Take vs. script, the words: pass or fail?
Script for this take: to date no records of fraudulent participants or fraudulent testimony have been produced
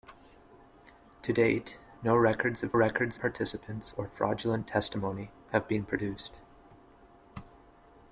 fail